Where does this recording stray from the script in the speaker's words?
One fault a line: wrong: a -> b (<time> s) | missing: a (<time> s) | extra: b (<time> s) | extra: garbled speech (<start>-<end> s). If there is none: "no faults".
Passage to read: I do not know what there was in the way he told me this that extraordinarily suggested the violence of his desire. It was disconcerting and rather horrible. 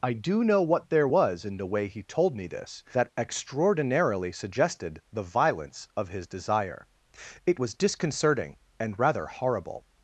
missing: not (0.4 s)